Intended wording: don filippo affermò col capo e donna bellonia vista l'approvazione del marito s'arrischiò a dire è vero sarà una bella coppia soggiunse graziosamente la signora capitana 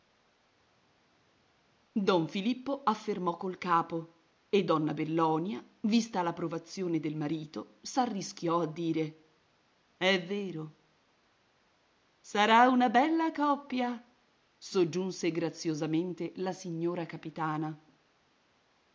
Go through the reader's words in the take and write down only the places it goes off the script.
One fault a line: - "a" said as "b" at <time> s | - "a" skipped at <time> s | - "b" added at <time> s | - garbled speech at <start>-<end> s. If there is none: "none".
none